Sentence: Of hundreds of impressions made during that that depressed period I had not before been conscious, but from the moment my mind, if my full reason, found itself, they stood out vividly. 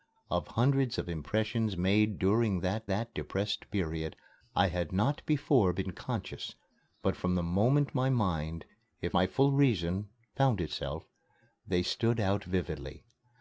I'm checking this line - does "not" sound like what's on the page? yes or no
yes